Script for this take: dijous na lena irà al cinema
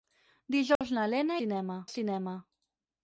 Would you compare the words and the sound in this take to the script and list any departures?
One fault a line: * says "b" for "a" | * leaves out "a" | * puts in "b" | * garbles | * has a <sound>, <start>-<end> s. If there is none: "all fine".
* has a dropout, 0.8-0.8 s
* says "cinema" for "irà"